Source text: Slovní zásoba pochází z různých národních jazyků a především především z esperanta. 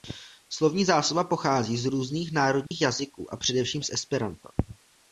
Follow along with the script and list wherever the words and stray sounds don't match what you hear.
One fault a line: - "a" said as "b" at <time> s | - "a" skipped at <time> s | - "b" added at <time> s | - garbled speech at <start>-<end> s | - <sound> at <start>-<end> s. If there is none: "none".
- dropout at 2.7-2.7 s
- "především" skipped at 3.8 s